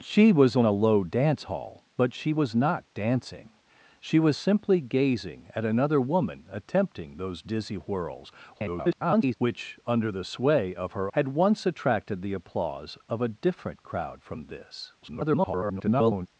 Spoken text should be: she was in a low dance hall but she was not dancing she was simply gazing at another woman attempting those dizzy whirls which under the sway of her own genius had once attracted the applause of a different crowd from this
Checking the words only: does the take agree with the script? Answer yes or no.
no